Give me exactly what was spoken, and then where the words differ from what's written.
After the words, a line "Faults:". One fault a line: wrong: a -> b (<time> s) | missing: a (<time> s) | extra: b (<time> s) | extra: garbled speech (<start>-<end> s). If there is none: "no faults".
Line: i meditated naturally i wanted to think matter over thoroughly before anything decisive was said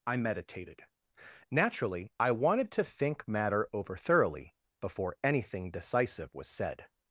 i meditated naturally i wanted to think matter over thoroughly before anything decisive was said
Faults:
no faults